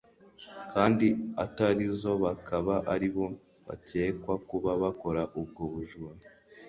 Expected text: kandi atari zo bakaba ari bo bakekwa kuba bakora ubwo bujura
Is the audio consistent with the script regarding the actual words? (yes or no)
yes